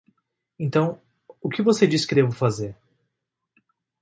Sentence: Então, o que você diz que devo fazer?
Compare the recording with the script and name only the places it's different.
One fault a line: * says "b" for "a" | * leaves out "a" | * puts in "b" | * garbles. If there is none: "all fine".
all fine